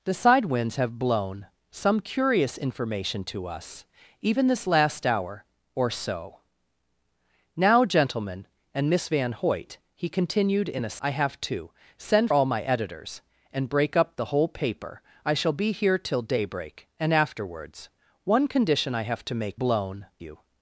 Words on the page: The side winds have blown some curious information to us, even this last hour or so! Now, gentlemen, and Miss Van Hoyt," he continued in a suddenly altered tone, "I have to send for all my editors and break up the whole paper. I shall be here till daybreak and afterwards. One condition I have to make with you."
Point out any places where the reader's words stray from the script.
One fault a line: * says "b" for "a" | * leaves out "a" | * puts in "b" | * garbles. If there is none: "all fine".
* leaves out "suddenly altered tone"
* leaves out "for"
* says "blown" for "with"